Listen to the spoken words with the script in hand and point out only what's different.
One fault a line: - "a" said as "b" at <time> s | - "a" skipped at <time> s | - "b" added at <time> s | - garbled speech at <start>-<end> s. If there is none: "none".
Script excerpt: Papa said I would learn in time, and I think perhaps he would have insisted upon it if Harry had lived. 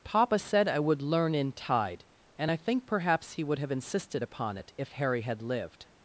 - "time" said as "tide" at 1.5 s